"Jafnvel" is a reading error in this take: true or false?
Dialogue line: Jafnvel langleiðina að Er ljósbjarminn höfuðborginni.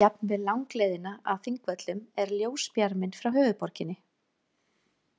false